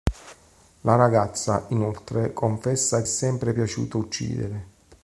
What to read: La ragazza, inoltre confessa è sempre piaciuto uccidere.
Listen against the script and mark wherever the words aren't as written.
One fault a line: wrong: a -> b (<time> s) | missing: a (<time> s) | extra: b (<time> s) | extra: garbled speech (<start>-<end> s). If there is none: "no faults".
no faults